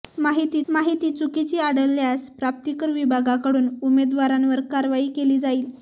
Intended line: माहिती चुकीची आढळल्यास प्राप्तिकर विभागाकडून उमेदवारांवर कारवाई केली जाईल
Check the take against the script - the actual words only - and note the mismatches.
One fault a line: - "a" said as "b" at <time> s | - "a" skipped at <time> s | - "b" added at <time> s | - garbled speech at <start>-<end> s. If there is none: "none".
- "माहिती" added at 0.7 s